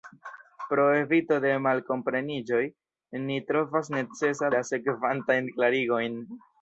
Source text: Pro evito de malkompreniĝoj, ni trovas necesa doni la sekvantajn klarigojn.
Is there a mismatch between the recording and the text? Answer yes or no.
yes